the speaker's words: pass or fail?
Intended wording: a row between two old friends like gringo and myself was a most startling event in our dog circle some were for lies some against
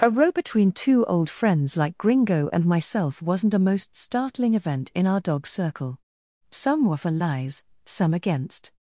fail